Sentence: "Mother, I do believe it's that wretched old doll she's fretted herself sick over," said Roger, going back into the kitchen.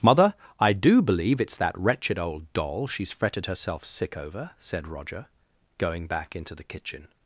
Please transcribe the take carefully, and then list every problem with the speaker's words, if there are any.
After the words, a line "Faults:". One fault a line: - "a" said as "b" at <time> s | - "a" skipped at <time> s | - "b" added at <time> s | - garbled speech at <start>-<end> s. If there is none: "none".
"Mother, I do believe it's that wretched old doll she's fretted herself sick over," said Roger, going back into the kitchen.
Faults:
none